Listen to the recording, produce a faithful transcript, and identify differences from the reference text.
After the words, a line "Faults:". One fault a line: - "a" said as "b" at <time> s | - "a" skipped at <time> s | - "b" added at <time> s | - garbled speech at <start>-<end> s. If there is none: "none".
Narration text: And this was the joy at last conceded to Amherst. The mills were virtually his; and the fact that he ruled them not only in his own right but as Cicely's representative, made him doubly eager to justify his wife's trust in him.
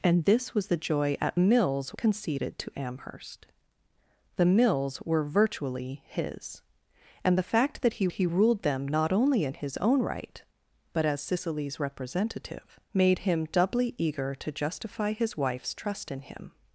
And this was the joy at mills conceded to Amherst. The mills were virtually his; and the fact that he he ruled them not only in his own right but as Cicely's representative, made him doubly eager to justify his wife's trust in him.
Faults:
- "last" said as "mills" at 1.4 s
- "he" added at 8.1 s